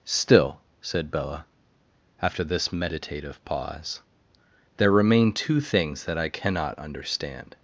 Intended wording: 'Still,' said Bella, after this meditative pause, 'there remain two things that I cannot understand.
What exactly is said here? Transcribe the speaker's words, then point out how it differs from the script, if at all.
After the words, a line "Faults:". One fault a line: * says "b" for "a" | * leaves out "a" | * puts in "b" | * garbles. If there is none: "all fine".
'Still,' said Bella, after this meditative pause, 'there remain two things that I cannot understand.
Faults:
all fine